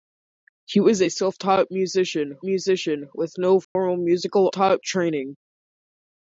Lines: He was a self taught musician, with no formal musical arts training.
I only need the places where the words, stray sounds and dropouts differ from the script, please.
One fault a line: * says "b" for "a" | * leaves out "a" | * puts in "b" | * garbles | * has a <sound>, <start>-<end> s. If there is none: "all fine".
* puts in "musician"
* has a dropout, 3.6-3.8 s
* says "taught" for "arts"